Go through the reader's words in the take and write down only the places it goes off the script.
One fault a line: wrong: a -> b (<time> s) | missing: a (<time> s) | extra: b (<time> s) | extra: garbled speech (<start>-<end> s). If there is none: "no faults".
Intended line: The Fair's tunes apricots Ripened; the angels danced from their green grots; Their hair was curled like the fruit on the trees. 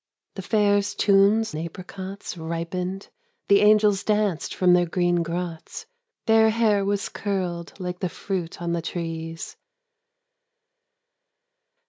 no faults